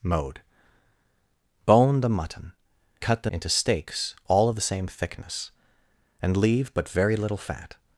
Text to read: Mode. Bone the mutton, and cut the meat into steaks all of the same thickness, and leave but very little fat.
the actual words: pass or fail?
fail